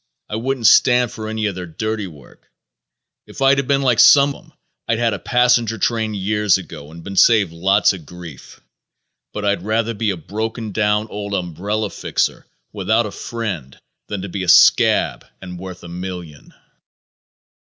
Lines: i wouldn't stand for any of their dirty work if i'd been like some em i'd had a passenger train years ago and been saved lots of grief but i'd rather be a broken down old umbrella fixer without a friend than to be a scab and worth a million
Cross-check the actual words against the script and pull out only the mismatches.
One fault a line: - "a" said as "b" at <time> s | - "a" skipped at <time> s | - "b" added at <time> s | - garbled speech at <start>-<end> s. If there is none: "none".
none